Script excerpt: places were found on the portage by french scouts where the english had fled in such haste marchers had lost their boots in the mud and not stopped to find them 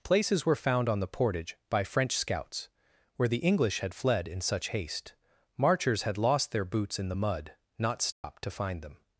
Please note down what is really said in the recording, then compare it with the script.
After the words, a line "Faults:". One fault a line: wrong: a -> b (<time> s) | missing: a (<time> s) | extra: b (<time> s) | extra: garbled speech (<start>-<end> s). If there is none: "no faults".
places were found on the portage by french scouts where the english had fled in such haste marchers had lost their boots in the mud not stopped to find them
Faults:
missing: and (7.5 s)